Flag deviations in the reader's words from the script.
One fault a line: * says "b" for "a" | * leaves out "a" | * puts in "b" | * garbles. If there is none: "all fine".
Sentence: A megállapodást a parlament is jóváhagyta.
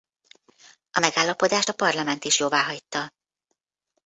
all fine